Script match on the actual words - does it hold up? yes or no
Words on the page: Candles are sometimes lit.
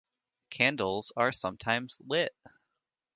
yes